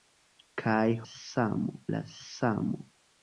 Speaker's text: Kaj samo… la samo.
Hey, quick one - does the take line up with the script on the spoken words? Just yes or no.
yes